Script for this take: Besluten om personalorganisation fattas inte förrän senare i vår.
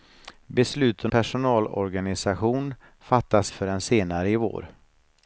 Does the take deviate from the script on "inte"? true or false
true